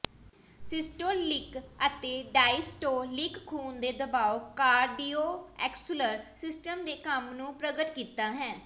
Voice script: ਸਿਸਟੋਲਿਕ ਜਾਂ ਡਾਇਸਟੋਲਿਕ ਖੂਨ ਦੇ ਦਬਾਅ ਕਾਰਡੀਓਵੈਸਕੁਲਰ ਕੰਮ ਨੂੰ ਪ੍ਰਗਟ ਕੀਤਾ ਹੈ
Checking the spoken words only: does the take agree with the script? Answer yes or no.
no